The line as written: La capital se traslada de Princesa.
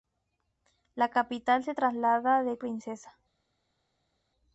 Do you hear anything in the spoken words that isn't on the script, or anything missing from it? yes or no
no